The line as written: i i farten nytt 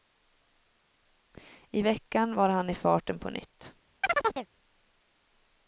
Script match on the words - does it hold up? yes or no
no